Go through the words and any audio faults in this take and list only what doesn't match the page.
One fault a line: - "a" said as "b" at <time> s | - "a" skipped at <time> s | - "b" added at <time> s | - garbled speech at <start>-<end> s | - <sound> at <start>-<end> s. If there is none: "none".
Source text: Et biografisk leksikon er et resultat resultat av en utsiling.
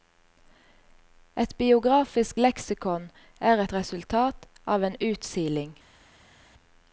- "resultat" skipped at 4.5 s